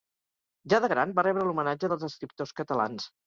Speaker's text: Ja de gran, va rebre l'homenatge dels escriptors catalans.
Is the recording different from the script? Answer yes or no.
no